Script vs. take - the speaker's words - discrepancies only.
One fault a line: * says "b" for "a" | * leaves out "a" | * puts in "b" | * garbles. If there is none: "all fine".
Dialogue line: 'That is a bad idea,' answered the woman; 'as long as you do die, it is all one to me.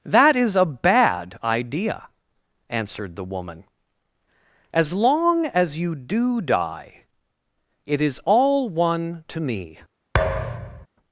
all fine